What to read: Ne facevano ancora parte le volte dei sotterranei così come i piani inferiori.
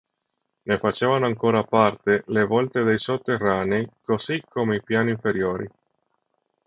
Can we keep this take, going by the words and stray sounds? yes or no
yes